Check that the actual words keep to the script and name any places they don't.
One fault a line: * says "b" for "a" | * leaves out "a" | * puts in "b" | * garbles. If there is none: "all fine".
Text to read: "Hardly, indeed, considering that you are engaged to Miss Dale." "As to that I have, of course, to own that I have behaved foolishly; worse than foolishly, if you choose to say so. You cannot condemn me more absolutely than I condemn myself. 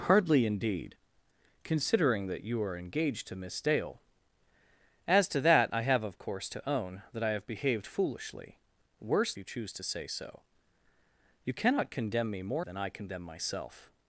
* leaves out "than foolishly if"
* leaves out "absolutely"